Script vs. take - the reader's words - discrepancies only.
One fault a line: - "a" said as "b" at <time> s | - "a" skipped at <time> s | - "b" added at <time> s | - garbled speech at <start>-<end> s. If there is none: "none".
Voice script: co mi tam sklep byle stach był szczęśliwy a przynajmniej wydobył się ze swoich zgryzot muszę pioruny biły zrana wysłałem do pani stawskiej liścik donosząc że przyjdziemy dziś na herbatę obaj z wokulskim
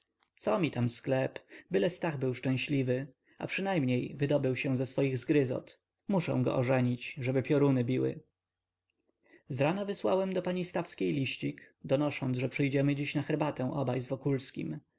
- "go ożenić żeby" added at 6.4 s